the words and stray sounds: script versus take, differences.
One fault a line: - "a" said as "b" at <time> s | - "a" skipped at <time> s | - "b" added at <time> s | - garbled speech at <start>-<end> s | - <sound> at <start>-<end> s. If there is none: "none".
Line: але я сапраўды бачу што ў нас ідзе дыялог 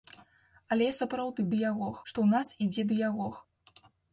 - "бачу" said as "дыялог" at 1.6 s